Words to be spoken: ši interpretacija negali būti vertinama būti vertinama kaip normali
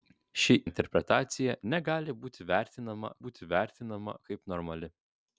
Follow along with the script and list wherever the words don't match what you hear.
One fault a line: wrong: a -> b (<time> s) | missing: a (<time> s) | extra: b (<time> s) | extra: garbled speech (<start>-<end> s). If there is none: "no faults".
no faults